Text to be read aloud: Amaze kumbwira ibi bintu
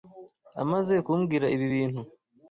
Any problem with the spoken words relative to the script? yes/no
no